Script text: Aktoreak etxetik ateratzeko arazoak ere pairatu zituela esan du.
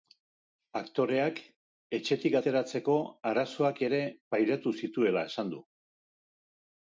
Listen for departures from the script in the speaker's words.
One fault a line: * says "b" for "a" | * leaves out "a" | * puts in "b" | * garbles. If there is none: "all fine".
all fine